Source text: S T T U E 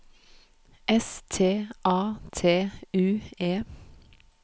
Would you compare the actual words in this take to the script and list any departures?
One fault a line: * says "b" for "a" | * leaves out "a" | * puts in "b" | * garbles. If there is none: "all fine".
* puts in "A"